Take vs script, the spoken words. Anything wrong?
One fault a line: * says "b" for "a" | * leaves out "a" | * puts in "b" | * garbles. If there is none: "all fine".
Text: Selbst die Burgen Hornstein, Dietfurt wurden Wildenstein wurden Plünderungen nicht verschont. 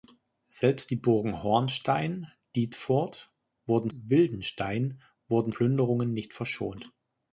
all fine